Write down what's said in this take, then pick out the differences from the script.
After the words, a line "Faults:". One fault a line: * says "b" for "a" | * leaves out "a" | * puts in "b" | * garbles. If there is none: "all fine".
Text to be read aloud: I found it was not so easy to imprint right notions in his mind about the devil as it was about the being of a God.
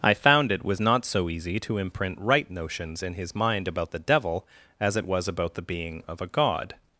I found it was not so easy to imprint right notions in his mind about the devil as it was about the being of a God.
Faults:
all fine